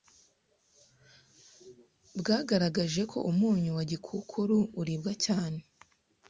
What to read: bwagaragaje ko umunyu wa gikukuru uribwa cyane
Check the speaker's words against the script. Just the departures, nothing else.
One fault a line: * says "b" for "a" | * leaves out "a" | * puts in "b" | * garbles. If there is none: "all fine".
all fine